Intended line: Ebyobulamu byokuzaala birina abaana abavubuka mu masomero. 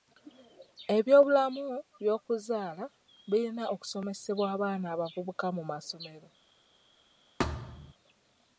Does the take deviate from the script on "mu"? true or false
false